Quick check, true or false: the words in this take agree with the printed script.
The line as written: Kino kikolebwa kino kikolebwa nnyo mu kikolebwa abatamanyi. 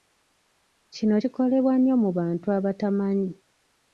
false